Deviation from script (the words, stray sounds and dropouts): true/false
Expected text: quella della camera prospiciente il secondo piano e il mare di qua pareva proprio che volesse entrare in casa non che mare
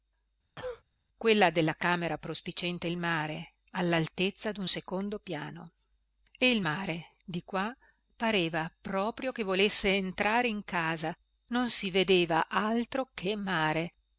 true